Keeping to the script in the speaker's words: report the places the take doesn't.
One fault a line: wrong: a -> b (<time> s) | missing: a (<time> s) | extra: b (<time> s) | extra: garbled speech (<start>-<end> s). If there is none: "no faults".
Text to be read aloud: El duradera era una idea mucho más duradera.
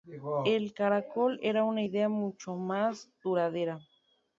wrong: duradera -> caracol (0.7 s)